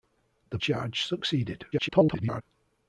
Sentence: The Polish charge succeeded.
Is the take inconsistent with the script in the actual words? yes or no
yes